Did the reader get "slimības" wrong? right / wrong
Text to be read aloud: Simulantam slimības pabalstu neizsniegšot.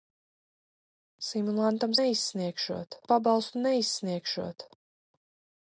wrong